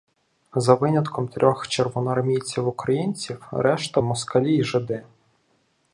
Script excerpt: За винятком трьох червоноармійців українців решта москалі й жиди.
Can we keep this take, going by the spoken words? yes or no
yes